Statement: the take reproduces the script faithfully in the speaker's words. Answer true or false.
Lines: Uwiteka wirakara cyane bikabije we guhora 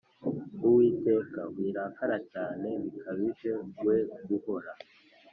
true